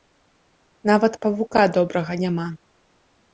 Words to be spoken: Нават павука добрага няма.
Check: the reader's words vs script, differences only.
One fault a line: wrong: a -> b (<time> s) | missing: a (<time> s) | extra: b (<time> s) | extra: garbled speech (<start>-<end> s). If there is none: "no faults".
no faults